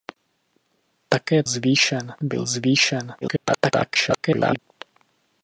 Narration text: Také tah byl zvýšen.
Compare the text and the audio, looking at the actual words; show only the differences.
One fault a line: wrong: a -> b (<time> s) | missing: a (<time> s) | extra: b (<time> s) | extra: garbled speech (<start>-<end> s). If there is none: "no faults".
wrong: tah -> zvýšen (1.5 s)
extra: garbled speech (3.2-4.6 s)